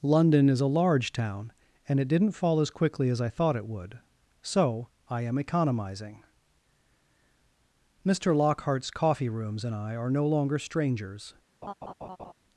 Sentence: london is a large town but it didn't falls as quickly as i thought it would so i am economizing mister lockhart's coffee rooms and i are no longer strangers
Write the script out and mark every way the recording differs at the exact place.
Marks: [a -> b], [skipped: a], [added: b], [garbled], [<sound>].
london is a large town [but -> and] it didn't [falls -> fall] as quickly as i thought it would so i am economizing mister lockhart's coffee rooms and i are no longer strangers [laugh]